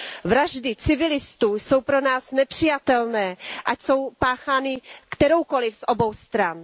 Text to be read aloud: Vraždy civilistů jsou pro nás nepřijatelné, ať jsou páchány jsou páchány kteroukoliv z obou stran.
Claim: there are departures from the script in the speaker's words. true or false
true